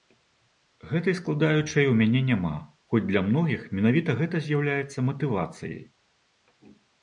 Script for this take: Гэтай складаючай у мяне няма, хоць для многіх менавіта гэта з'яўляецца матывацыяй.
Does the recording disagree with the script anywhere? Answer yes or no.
no